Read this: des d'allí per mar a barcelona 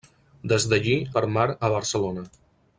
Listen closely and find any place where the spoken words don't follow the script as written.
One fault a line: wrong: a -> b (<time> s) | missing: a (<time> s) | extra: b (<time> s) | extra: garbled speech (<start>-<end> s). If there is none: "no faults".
no faults